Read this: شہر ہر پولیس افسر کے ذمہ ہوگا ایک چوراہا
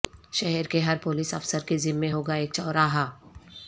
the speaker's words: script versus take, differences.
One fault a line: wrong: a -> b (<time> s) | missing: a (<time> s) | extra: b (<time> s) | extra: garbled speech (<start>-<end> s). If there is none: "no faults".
extra: کے (0.7 s)